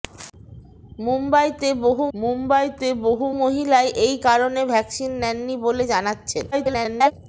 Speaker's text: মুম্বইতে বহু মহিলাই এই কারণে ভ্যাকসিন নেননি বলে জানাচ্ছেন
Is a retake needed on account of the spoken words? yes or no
yes